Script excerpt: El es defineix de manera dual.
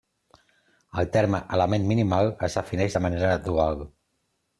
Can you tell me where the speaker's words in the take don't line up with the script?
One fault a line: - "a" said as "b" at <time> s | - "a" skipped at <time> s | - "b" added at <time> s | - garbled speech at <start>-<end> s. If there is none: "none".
- "terme element minimal" added at 1.2 s